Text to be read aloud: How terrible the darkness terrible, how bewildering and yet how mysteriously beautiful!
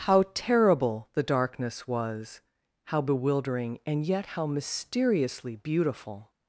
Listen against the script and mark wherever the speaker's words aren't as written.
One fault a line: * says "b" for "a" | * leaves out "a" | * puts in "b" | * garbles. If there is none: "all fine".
* says "was" for "terrible"